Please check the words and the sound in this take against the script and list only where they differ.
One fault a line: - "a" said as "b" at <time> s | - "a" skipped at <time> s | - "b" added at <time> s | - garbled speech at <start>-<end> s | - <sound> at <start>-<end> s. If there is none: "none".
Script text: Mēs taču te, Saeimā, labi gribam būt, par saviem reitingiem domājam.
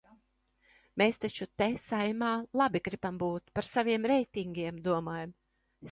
none